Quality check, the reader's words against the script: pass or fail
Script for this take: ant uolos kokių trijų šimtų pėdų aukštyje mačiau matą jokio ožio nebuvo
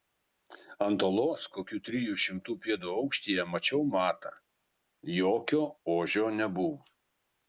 pass